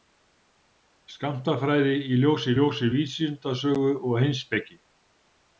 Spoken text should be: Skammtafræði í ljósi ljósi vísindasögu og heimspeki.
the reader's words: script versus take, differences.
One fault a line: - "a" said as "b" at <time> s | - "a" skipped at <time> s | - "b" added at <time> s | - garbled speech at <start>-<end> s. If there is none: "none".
none